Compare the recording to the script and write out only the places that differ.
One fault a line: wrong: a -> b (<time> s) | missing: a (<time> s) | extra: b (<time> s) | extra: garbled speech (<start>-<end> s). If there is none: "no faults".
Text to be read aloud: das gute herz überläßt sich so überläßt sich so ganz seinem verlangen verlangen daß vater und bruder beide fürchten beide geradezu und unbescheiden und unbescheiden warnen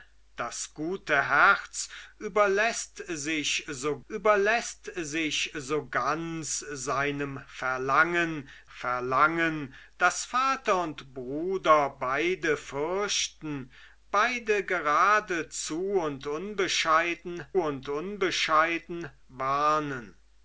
no faults